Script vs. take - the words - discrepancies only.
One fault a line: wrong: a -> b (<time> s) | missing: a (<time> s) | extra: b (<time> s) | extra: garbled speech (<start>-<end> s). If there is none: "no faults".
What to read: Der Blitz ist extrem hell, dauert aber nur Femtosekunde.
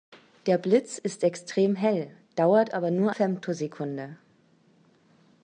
no faults